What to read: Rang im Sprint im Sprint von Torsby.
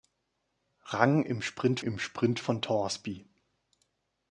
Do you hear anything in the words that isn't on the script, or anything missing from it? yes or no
no